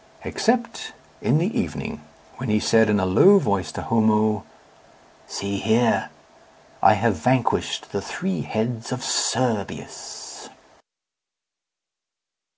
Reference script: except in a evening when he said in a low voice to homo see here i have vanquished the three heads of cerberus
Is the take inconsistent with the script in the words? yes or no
yes